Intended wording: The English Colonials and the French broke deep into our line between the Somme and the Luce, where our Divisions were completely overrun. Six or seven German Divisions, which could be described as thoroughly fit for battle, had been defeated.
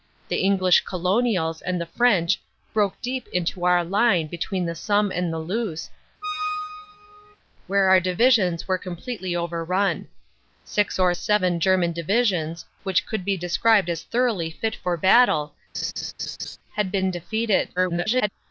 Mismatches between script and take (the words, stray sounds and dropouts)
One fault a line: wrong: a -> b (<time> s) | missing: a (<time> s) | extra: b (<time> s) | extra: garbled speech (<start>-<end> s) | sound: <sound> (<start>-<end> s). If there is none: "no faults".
sound: squeak (6.2-7.4 s)
sound: laugh (15.7-16.6 s)
extra: garbled speech (17.8-18.3 s)